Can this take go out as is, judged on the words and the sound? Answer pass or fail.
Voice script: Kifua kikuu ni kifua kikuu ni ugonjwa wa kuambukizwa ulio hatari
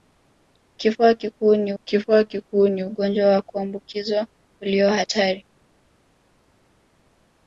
pass